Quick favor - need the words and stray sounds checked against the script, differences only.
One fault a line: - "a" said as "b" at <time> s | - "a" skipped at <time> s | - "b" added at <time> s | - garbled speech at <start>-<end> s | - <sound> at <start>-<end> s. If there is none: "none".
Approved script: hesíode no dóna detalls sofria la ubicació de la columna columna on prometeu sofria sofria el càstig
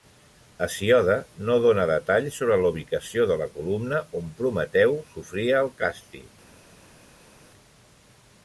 - "sofria" said as "sobre" at 2.4 s
- "columna" skipped at 4.0 s
- "sofria" skipped at 5.7 s